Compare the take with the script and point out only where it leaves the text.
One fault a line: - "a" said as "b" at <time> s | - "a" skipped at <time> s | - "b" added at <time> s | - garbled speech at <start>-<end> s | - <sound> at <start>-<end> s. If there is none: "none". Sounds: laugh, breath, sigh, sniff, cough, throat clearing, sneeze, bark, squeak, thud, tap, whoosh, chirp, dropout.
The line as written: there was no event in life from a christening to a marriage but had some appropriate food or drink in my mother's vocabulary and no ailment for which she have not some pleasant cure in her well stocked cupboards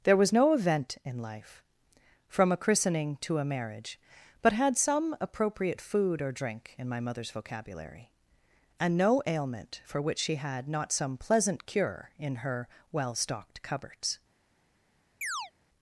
- "have" said as "had" at 10.4 s
- chirp at 15.2-15.5 s